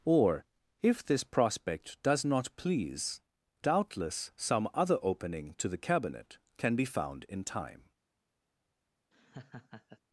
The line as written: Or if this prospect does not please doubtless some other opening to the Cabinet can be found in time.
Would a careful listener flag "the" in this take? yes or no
no